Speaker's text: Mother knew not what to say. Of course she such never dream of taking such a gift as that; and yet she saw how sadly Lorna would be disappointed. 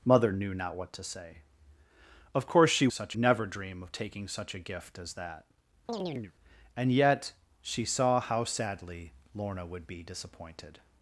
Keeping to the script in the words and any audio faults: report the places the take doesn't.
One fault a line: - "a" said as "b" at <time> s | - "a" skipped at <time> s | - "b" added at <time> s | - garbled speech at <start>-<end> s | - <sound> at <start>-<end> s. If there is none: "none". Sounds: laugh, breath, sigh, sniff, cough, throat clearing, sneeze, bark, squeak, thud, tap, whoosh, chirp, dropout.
- chirp at 5.9-6.3 s